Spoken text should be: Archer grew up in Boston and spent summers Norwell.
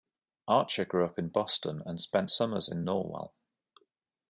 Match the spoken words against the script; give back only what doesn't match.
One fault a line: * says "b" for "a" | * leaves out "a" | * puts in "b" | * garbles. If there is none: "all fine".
* puts in "in"